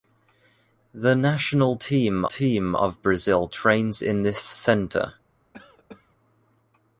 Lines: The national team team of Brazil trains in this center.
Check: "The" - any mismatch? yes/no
no